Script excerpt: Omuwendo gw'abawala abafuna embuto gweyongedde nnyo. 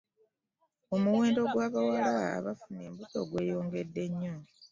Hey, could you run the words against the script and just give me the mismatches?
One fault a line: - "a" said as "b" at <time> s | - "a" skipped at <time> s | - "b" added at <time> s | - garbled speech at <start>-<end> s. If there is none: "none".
none